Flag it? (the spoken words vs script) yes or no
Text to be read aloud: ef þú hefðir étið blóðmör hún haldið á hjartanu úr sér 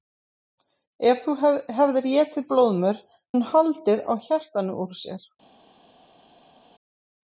no